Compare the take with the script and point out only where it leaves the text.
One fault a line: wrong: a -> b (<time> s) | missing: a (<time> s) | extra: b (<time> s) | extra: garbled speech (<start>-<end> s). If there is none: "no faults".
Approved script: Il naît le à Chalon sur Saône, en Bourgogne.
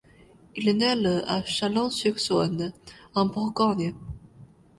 no faults